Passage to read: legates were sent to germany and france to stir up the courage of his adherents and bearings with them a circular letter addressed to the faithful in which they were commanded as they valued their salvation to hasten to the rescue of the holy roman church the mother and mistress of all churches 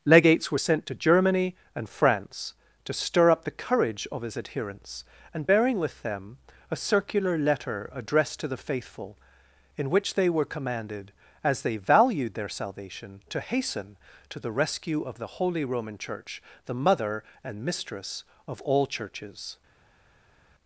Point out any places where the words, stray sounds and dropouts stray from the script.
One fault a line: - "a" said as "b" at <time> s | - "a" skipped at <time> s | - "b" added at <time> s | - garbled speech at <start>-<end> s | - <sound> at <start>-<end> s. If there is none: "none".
- "bearings" said as "bearing" at 5.4 s